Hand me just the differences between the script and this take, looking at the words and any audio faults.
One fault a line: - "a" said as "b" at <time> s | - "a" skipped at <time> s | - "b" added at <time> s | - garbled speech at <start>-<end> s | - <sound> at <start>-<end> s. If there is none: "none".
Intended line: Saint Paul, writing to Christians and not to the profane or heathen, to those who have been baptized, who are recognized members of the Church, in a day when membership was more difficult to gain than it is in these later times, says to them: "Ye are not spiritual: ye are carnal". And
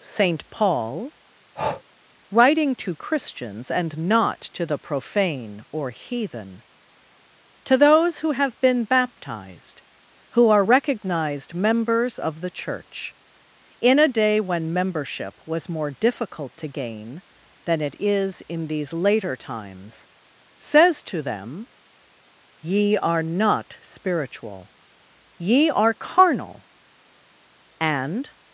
- breath at 1.6-1.8 s